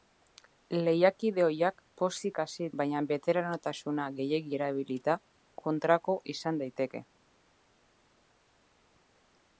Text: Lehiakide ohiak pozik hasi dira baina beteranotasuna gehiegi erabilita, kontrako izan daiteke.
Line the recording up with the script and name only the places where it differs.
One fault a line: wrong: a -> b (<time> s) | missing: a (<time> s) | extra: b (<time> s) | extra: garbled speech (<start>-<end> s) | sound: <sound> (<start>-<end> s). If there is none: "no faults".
missing: dira (2.7 s)